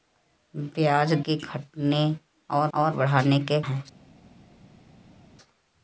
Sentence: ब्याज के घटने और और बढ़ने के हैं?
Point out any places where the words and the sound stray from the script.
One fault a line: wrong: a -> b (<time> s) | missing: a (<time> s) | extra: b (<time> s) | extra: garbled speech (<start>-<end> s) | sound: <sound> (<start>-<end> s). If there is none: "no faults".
no faults